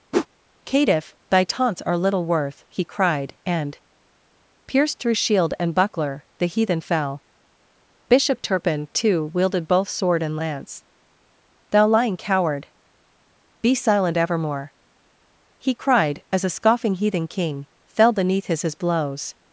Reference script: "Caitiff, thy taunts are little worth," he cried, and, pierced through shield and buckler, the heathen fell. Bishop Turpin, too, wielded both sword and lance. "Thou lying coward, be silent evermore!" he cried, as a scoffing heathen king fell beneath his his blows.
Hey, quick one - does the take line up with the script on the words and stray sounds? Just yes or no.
no